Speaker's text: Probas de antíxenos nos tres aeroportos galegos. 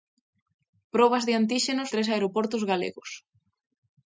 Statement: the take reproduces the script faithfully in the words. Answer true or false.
false